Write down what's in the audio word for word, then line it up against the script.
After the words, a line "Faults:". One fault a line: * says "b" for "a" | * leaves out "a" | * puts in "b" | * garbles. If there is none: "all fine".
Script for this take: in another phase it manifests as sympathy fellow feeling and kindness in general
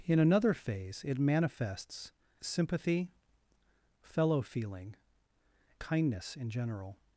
in another phase it manifests sympathy fellow feeling kindness in general
Faults:
* leaves out "as"
* leaves out "and"